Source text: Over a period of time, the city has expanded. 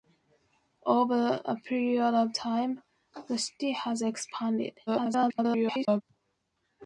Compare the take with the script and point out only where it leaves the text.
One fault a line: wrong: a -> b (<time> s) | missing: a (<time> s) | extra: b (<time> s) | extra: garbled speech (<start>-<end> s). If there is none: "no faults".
extra: garbled speech (4.9-6.0 s)